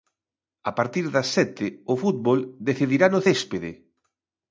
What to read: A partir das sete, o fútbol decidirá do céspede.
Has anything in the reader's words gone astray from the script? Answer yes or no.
yes